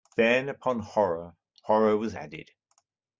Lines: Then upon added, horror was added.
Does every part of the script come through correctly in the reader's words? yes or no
no